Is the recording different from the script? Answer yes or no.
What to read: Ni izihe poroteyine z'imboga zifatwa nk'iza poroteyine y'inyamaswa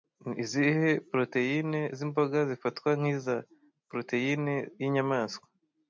no